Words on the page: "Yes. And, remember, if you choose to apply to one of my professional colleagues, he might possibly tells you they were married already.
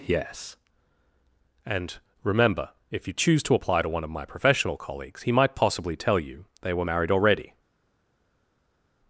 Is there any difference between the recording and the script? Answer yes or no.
yes